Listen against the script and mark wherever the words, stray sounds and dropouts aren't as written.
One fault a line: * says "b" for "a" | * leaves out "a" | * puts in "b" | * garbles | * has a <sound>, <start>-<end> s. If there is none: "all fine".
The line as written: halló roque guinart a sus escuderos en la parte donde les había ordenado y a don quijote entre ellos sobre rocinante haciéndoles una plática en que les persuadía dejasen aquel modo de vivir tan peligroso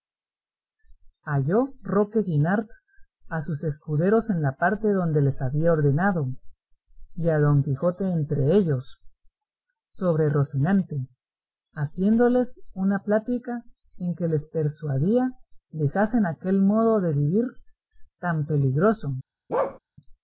* has a bark, 19.5-19.8 s